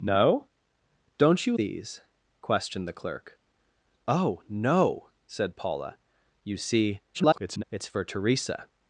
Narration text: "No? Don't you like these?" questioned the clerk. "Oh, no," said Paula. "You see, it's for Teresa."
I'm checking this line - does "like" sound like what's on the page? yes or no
no